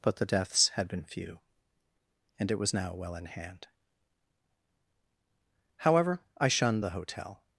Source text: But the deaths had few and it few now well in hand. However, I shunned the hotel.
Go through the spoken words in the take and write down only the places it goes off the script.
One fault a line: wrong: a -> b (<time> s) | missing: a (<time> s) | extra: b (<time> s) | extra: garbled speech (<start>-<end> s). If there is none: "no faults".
extra: been (0.9 s)
wrong: few -> was (2.6 s)